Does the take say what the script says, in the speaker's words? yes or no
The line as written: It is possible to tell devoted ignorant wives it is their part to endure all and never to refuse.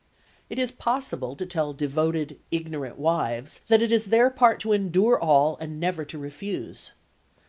no